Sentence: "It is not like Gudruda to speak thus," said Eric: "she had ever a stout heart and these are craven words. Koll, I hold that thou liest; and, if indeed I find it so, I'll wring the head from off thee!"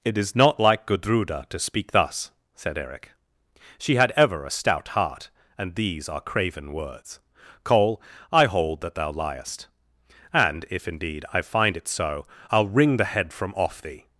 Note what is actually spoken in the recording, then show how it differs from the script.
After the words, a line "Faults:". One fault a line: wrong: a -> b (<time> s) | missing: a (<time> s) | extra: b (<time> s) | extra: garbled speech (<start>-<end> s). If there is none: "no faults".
"It is not like Gudruda to speak thus," said Eric: "she had ever a stout heart and these are craven words. Koll, I hold that thou liest; and, if indeed I find it so, I'll wring the head from off thee!"
Faults:
no faults